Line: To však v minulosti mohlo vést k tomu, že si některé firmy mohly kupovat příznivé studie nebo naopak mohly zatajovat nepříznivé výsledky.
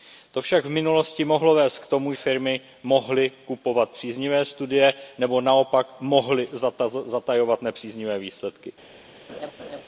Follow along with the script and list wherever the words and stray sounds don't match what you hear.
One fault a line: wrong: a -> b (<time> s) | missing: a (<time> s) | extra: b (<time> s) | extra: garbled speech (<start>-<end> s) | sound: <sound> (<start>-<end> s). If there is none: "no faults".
missing: že si některé (2.1 s)
sound: laugh (9.3-9.8 s)